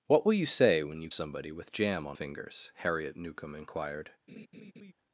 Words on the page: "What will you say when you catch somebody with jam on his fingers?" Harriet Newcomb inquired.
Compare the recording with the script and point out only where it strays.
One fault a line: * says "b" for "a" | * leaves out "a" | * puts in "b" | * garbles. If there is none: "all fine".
* leaves out "catch"
* leaves out "his"